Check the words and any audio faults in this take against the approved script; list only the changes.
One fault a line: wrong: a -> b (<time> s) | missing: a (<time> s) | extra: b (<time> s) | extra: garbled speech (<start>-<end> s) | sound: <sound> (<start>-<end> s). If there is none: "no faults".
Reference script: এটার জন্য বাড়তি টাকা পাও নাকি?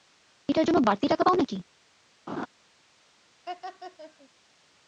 sound: laugh (2.3-2.5 s)
sound: laugh (3.5-4.3 s)